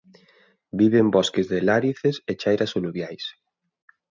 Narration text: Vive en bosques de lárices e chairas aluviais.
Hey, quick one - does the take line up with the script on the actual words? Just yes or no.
yes